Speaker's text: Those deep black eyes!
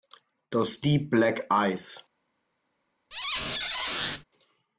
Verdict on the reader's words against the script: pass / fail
pass